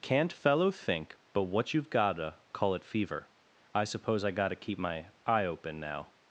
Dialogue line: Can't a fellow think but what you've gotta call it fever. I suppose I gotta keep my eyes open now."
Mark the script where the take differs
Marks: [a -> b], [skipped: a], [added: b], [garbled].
Can't [skipped: a] fellow think but what you've gotta call it fever. I suppose I gotta keep my [eyes -> eye] open now."